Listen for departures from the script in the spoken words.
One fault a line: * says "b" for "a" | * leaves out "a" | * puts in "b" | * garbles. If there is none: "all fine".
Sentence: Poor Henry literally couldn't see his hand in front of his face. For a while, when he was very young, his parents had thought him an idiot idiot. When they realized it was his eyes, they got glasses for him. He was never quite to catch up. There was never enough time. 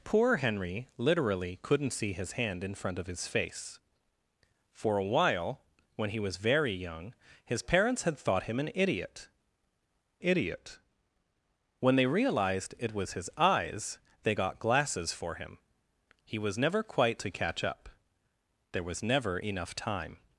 all fine